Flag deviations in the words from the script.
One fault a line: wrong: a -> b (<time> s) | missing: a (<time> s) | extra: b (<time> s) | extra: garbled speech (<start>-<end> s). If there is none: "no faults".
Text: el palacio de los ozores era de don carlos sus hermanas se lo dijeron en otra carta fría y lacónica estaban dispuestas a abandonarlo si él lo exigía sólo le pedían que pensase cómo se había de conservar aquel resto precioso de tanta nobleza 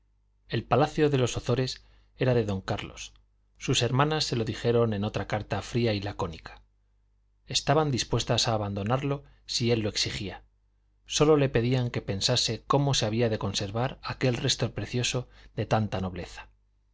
no faults